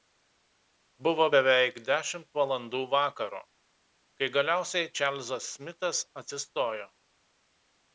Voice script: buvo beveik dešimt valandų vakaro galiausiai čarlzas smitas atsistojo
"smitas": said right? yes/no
yes